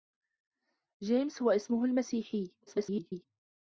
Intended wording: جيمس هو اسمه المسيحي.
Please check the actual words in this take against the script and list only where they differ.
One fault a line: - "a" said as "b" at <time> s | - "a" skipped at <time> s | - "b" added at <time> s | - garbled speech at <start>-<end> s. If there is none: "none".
- garbled speech at 2.7-3.3 s